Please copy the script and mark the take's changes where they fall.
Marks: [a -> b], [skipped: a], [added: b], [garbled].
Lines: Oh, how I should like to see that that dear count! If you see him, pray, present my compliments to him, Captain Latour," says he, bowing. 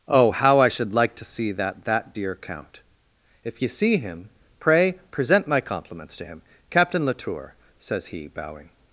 Oh, how I should like to see that that dear count! If you see him, pray, present my compliments to him, Captain Latour," says he, bowing.